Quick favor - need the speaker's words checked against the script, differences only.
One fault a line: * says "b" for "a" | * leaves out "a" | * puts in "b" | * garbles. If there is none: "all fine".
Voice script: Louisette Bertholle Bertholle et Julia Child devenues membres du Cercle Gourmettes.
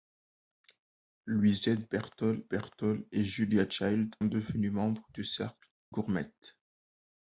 all fine